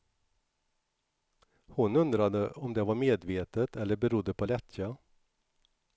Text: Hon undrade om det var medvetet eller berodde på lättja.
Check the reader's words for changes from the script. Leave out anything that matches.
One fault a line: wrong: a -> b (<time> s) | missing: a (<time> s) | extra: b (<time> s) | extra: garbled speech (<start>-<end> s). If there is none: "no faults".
no faults